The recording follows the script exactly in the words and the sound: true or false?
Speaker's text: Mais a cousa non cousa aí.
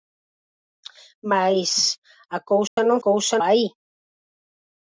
false